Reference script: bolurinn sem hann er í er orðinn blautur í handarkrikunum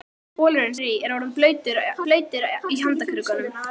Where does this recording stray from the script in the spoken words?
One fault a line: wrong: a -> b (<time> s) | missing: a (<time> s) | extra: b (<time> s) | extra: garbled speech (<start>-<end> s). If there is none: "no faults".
missing: sem hann (0.7 s)
extra: blautur (2.1 s)